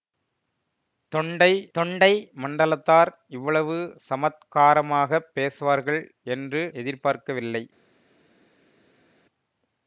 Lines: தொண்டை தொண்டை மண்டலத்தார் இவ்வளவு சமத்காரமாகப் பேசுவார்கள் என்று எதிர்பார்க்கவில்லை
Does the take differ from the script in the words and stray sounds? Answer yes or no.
no